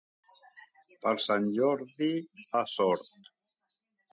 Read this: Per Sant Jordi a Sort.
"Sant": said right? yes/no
yes